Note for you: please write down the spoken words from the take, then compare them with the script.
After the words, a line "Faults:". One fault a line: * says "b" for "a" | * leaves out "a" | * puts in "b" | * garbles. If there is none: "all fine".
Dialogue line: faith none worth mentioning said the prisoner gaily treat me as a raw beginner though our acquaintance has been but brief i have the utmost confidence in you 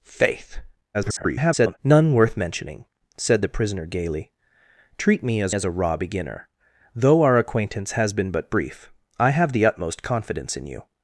faith [garbled] none worth mentioning said the prisoner gaily treat me as as a raw beginner though our acquaintance has been but brief i have the utmost confidence in you
Faults:
* garbles
* puts in "as"